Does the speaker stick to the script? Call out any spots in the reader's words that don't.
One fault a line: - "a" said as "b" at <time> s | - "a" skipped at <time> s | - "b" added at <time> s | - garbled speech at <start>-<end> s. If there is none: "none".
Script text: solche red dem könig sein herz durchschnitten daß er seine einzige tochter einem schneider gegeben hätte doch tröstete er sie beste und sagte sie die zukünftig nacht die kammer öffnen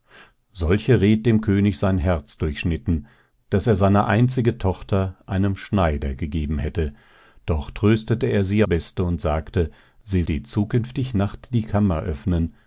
none